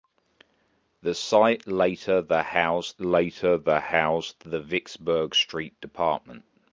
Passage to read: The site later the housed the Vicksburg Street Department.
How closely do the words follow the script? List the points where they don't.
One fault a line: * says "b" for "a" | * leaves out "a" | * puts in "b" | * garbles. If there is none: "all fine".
* puts in "later the housed"